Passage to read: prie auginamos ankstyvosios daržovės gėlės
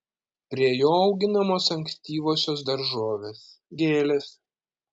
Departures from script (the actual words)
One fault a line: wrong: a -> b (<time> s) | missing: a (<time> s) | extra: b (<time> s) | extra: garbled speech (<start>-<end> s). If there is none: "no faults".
extra: jo (0.8 s)